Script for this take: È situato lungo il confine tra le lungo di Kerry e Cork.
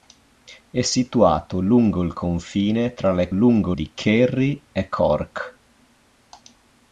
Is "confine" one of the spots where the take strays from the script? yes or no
no